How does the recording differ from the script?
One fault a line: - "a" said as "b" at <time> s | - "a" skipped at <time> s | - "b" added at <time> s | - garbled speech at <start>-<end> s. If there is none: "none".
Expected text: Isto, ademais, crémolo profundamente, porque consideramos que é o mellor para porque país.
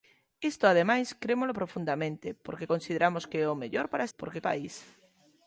none